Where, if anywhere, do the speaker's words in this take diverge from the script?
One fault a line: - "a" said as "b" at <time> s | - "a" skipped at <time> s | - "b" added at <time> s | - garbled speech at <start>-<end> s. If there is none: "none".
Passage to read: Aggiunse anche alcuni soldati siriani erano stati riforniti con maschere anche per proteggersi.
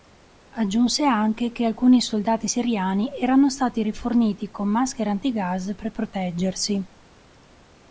- "che" added at 1.5 s
- "anche" said as "antigas" at 5.1 s